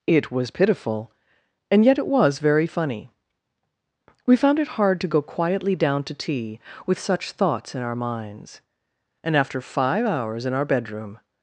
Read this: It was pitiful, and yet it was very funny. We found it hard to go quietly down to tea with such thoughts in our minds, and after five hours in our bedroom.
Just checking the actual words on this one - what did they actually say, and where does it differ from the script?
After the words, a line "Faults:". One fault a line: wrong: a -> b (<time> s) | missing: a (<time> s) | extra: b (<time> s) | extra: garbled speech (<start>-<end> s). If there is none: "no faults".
It was pitiful, and yet it was very funny. We found it hard to go quietly down to tea with such thoughts in our minds, and after five hours in our bedroom.
Faults:
no faults